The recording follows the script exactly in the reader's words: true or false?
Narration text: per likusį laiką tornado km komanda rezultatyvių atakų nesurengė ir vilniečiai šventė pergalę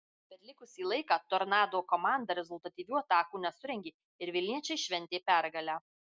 false